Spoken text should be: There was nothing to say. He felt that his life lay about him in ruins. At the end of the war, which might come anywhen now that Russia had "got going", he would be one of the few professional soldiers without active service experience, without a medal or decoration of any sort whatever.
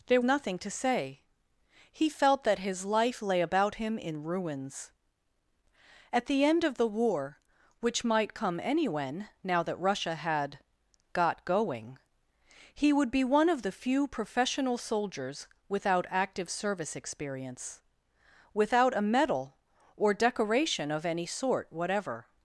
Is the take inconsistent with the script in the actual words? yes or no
yes